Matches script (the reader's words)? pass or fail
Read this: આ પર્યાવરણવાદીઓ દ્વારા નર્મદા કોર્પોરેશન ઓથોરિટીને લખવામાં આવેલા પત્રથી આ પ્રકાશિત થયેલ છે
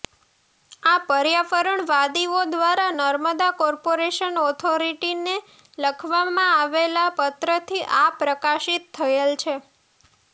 pass